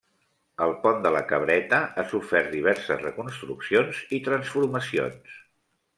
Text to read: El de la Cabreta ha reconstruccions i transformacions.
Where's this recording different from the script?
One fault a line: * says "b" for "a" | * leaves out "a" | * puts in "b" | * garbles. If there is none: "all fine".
* puts in "pont"
* puts in "sofert diverses"